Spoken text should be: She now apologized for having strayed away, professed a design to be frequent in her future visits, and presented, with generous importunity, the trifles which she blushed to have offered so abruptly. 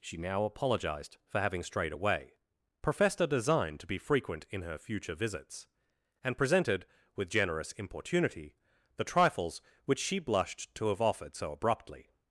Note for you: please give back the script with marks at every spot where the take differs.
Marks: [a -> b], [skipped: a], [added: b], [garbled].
She now apologized for having strayed away, professed a design to be frequent in her future visits, and presented, with generous importunity, the trifles which she blushed to have offered so abruptly.